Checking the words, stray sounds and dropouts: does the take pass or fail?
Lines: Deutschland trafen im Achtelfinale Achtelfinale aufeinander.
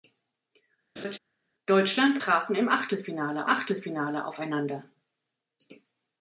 fail